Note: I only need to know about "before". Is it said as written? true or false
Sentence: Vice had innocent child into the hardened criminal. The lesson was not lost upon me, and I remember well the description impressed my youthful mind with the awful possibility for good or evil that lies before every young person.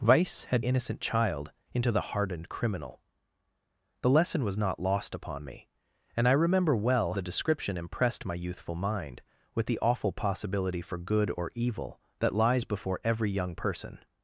true